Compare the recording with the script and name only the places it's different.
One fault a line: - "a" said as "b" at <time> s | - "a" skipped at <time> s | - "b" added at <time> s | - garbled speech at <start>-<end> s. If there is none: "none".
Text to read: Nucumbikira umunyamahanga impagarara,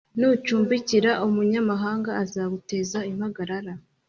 - "azaguteza" added at 2.2 s